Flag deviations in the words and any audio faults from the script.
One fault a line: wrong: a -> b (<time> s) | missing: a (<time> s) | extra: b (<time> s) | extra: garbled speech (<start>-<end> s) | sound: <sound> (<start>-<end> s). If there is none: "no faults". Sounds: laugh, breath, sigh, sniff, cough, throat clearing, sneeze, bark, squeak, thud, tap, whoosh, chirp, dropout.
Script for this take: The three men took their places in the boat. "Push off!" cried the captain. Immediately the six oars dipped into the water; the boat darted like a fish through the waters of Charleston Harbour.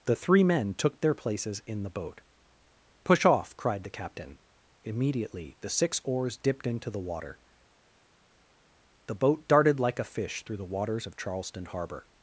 no faults